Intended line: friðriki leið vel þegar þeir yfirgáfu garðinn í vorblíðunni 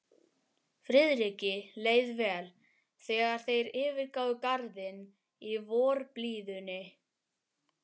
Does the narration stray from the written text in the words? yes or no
no